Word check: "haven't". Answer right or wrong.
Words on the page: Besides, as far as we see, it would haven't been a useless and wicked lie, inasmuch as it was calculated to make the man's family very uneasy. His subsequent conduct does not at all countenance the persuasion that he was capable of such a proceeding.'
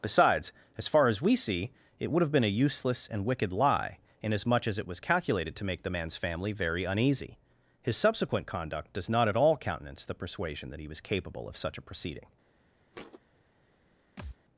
wrong